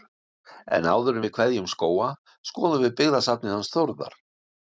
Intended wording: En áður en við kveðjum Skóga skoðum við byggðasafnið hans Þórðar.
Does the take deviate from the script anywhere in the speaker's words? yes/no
no